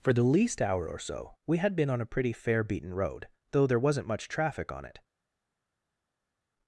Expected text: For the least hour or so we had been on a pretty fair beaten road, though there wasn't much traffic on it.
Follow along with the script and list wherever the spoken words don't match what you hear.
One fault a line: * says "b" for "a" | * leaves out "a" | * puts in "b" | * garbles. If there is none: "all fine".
all fine